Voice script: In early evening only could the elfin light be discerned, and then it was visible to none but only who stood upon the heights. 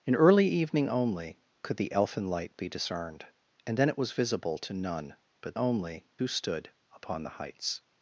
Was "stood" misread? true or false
false